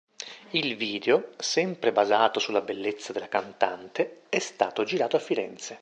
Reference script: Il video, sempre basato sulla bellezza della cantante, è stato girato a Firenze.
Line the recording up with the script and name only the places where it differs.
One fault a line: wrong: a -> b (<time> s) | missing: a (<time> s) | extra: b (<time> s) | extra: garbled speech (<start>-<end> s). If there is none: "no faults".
no faults